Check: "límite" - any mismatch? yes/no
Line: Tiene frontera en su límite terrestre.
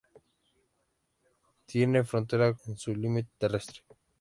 no